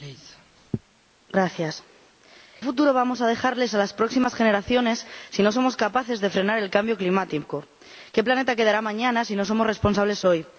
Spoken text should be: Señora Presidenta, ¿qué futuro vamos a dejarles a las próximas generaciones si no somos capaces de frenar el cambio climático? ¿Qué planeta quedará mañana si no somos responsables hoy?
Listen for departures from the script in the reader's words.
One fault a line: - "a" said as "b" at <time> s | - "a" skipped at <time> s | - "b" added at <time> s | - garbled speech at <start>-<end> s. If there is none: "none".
- "qué" skipped at 1.8 s